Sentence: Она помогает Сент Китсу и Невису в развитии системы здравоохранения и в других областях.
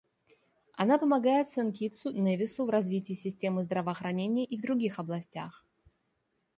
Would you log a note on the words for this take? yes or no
yes